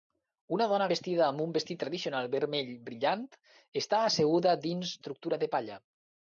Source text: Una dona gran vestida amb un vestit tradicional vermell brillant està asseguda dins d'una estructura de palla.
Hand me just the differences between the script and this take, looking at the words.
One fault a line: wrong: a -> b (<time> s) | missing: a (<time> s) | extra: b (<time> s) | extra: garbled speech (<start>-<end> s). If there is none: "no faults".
missing: gran (0.8 s)
missing: d'una (4.9 s)